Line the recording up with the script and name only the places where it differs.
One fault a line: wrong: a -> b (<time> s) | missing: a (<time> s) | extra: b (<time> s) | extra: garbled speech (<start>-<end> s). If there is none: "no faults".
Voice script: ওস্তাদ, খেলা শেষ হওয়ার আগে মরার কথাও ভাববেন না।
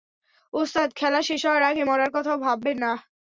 no faults